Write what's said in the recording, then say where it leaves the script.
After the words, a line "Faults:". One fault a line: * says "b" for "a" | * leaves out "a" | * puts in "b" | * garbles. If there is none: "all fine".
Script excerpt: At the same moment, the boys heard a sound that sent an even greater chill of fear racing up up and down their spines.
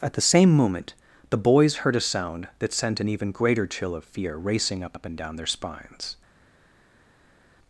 At the same moment, the boys heard a sound that sent an even greater chill of fear racing up up and down their spines.
Faults:
all fine